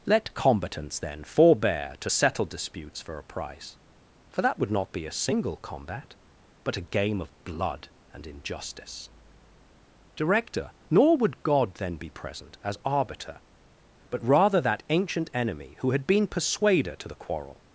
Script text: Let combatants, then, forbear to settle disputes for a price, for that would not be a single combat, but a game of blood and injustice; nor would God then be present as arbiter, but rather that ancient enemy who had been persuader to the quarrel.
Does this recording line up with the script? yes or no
no